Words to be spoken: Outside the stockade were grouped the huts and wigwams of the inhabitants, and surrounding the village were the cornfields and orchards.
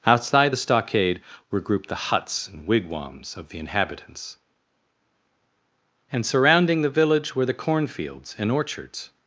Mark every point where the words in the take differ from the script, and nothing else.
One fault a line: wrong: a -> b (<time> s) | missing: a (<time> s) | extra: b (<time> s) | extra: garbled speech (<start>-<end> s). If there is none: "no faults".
no faults